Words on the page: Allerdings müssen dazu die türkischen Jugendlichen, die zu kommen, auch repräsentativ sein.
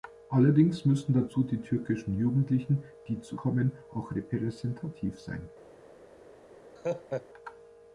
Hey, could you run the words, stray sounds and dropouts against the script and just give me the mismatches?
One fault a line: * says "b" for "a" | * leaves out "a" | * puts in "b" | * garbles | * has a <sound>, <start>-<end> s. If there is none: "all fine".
* has a laugh, 6.8-7.3 s